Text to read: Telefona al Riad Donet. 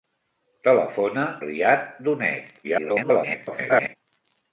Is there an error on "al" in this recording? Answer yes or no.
yes